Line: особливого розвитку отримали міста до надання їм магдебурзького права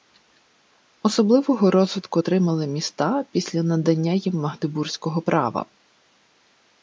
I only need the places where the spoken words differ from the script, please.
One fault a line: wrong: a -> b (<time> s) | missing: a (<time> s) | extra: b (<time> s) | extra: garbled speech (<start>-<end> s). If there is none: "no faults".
wrong: до -> після (3.3 s)